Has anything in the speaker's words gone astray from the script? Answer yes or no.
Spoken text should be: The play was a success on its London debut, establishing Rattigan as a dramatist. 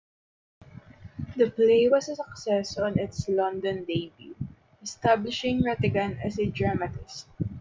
no